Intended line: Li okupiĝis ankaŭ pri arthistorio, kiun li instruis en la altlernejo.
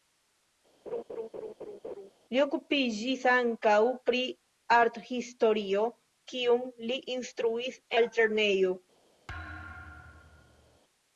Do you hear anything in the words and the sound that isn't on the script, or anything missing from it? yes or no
yes